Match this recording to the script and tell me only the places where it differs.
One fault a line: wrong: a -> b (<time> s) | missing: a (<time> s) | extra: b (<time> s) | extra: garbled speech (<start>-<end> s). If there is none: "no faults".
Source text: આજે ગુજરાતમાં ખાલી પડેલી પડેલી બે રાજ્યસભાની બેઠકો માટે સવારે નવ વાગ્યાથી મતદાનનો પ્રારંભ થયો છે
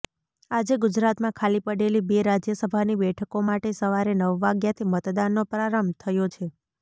missing: પડેલી (2.0 s)